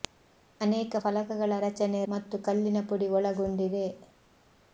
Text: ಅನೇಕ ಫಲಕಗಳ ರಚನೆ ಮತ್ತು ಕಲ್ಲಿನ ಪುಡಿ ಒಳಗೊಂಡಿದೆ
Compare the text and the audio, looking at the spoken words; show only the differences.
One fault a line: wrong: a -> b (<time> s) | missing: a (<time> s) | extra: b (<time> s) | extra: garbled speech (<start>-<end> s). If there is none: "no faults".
no faults